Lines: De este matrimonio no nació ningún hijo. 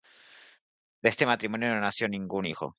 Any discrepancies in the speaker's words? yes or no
no